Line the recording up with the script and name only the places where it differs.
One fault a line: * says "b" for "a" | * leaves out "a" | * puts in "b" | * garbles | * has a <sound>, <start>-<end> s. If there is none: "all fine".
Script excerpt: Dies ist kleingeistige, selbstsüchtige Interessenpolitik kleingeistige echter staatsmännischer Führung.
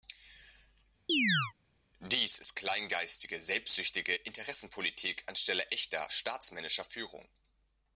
* has a chirp, 1.1-1.5 s
* says "anstelle" for "kleingeistige"